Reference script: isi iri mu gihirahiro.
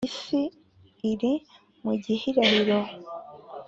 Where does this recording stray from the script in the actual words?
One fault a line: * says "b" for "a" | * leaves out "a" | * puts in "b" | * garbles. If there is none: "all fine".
all fine